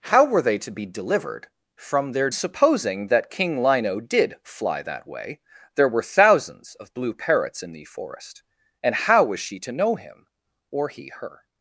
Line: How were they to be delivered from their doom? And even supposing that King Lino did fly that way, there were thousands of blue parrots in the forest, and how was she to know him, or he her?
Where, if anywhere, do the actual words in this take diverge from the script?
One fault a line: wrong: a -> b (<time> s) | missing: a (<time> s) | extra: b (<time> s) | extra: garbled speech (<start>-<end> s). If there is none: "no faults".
missing: doom And even (2.3 s)